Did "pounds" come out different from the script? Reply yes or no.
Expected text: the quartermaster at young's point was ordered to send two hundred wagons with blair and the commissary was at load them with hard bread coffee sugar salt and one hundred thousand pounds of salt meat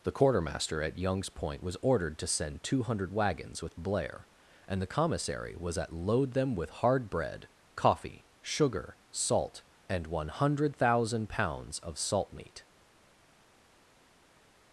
no